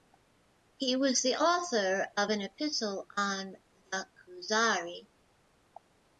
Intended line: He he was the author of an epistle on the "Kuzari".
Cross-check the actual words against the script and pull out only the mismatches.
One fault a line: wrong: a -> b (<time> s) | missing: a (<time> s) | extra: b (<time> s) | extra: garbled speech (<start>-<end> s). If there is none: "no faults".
missing: he (0.9 s)